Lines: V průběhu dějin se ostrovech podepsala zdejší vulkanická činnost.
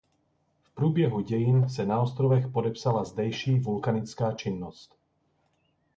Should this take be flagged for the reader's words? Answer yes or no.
yes